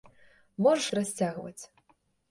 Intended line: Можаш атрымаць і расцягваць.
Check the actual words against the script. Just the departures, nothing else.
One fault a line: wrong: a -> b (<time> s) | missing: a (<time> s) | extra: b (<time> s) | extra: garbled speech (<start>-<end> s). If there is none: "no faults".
missing: атрымаць (0.9 s)